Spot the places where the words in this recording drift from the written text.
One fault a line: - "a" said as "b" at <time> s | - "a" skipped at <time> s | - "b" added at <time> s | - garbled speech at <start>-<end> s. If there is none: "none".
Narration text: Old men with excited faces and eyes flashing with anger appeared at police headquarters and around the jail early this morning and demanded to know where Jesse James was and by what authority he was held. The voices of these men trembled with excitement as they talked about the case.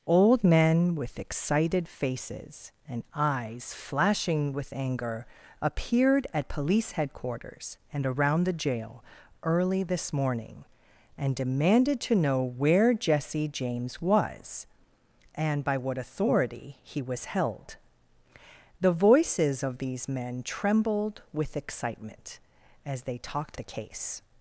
- "about" skipped at 23.6 s